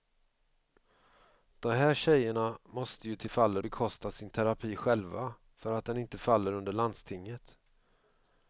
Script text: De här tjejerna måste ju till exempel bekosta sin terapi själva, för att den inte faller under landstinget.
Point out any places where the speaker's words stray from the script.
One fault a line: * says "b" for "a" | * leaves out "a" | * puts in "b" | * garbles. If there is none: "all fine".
* says "faller" for "exempel"